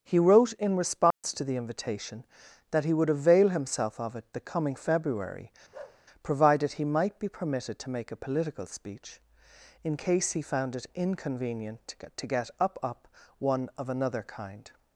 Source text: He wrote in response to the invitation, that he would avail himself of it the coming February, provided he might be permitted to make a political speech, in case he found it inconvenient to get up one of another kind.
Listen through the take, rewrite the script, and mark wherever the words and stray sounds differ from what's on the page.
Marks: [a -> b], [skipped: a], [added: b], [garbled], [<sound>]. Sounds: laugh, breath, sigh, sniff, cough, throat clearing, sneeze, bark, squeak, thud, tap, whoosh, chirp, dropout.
He wrote in response [dropout] to the invitation, that he would avail himself of it the coming February, [bark] provided he might be permitted to make a political speech, in case he found it inconvenient to get up [added: up] one of another kind.